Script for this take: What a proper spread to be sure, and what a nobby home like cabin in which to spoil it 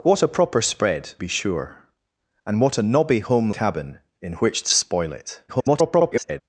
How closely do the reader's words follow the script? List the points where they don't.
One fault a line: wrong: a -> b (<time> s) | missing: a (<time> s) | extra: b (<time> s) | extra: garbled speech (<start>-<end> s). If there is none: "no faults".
missing: to (1.1 s)
missing: like (3.5 s)
extra: garbled speech (5.5-6.4 s)